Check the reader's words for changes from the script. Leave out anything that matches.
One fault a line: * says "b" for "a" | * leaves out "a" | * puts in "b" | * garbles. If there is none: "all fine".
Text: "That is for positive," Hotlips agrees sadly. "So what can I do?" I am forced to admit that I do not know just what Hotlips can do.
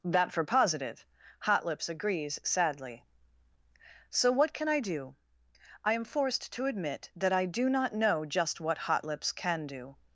* leaves out "is"